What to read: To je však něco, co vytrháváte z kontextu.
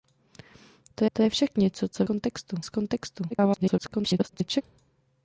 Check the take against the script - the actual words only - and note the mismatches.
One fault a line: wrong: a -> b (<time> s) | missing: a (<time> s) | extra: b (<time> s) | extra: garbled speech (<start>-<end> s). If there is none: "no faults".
extra: to (1.1 s)
wrong: vytrháváte -> kontextu (2.0 s)
extra: garbled speech (3.3-4.6 s)